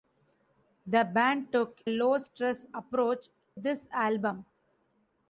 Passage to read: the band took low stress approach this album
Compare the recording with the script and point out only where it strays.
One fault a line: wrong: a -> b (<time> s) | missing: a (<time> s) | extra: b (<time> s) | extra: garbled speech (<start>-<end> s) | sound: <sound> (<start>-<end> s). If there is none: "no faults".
no faults